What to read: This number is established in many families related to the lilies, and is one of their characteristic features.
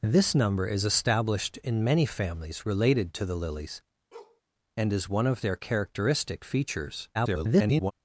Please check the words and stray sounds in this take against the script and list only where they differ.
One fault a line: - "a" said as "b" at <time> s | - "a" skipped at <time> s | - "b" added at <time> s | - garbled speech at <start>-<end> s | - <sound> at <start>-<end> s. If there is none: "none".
- bark at 4.1-4.4 s
- garbled speech at 7.1-7.9 s